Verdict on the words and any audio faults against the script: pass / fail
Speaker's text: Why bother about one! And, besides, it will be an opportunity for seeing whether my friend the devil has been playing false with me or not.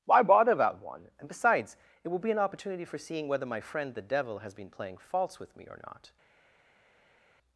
pass